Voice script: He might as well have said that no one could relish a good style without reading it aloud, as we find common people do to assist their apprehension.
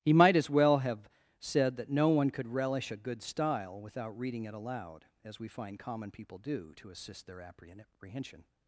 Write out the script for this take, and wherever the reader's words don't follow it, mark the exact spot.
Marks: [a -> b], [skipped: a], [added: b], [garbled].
He might as well have said that no one could relish a good style without reading it aloud, as we find common people do to assist their apprehension.